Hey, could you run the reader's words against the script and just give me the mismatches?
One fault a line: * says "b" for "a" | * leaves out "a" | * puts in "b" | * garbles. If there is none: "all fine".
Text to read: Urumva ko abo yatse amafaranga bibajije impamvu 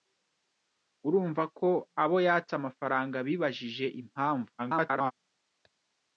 * garbles